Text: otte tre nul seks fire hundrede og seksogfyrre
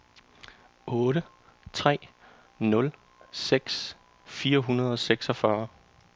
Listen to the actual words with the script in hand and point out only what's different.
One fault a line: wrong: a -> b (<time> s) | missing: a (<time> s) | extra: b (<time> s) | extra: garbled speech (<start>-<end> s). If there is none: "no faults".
no faults